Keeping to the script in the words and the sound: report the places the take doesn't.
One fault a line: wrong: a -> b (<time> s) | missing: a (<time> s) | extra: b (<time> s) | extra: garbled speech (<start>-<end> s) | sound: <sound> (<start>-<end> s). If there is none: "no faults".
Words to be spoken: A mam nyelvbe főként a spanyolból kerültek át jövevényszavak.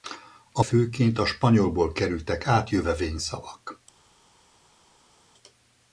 missing: mam nyelvbe (0.6 s)